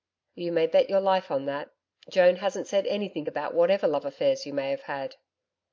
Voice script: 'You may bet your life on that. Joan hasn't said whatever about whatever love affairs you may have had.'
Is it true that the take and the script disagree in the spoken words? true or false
true